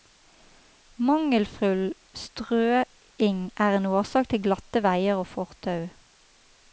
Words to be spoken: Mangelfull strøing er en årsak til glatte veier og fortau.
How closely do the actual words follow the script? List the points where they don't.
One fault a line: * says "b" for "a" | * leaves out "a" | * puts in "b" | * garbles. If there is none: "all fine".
all fine